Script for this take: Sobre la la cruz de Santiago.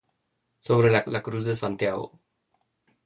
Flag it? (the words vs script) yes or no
no